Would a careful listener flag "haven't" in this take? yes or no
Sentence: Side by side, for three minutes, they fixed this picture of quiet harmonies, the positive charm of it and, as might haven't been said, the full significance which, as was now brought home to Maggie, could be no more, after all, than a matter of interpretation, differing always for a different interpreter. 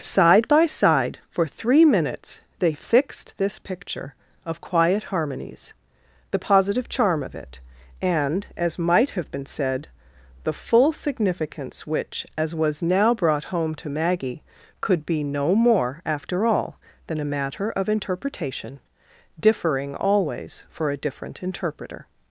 yes